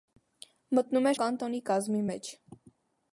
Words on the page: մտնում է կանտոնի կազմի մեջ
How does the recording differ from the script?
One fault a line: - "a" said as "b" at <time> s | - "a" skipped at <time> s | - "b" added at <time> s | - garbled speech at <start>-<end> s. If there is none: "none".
none